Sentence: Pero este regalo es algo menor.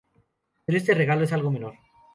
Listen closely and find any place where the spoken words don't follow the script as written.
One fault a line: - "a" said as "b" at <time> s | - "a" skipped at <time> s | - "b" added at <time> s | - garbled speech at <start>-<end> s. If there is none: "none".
none